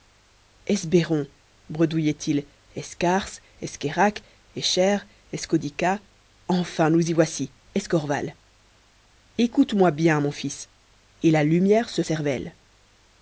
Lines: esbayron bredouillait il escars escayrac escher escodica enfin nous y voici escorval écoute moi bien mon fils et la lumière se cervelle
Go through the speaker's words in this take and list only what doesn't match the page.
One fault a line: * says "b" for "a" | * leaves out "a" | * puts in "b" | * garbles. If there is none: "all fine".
all fine